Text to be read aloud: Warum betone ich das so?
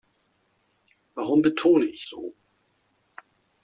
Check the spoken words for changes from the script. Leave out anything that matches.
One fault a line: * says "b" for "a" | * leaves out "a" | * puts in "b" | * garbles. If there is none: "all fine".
* leaves out "das"